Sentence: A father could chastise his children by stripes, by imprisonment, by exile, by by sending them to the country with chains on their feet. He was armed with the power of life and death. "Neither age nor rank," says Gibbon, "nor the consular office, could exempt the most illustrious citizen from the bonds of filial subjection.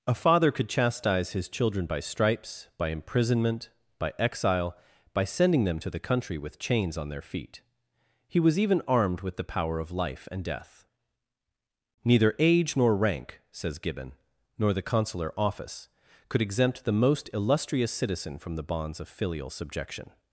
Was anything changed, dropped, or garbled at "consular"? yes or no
no